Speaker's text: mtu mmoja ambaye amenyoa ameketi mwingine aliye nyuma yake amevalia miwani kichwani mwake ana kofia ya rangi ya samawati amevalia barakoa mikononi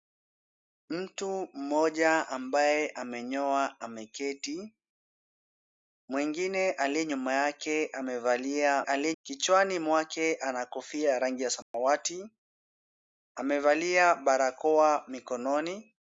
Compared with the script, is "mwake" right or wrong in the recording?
right